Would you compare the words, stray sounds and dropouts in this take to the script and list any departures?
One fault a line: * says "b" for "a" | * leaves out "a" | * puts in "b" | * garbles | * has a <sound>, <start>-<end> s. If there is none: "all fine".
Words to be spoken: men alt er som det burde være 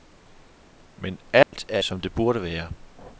* has a dropout, 1.4-1.5 s